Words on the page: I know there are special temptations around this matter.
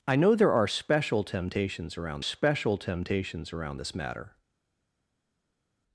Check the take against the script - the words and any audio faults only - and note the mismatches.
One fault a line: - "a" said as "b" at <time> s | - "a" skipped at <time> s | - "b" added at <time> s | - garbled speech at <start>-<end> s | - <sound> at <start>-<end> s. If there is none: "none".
- "special temptations around" added at 2.2 s